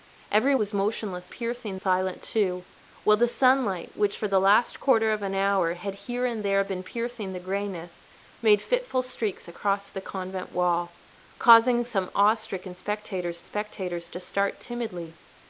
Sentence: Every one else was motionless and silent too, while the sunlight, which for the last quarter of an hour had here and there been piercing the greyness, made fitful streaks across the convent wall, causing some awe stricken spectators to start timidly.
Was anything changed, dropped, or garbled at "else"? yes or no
yes